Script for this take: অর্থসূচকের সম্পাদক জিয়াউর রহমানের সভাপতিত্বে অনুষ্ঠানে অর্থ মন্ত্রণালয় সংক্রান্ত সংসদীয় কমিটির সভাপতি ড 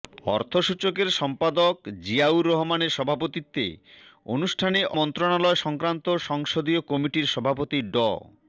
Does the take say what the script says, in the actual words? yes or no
no